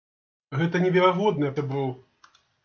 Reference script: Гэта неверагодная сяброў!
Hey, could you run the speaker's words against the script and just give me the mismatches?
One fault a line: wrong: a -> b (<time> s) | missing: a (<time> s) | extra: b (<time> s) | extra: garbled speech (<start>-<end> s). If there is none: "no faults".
no faults